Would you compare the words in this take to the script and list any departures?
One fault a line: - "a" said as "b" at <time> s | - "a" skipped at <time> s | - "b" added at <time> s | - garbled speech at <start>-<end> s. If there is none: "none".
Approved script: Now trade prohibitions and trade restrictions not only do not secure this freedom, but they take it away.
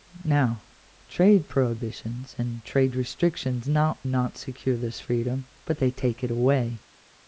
- "only do" skipped at 4.0 s